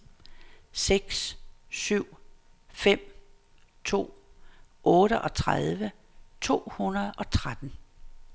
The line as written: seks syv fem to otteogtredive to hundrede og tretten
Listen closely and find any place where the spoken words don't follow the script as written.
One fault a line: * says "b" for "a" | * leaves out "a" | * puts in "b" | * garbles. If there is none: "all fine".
all fine